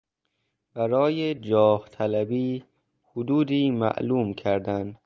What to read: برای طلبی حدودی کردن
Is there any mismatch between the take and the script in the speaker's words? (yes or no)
yes